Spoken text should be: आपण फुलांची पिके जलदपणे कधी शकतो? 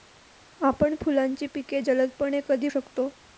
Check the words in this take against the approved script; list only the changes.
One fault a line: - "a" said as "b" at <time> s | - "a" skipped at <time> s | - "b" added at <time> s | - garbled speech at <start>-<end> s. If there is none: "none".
none